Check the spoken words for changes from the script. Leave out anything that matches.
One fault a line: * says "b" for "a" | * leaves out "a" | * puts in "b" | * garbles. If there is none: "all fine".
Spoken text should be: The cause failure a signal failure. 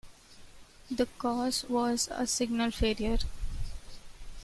* says "was" for "failure"